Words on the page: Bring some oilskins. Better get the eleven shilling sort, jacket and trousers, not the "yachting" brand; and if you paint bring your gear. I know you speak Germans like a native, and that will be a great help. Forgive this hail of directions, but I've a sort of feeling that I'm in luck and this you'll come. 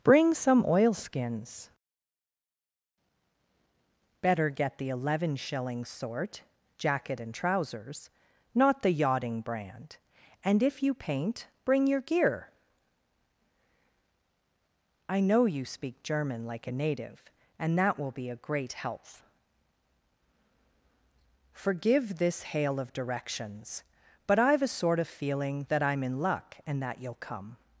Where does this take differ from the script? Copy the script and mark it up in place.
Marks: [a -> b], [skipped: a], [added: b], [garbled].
Bring some oilskins. Better get the eleven shilling sort, jacket and trousers, not the "yachting" brand; and if you paint bring your gear. I know you speak [Germans -> German] like a native, and that will be a great help. Forgive this hail of directions, but I've a sort of feeling that I'm in luck and [this -> that] you'll come.